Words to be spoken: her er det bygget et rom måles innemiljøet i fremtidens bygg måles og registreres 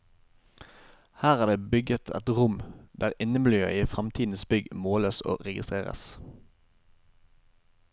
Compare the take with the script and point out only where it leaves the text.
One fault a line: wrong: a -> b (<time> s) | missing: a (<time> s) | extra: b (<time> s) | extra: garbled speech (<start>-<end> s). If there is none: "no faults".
wrong: måles -> der (3.0 s)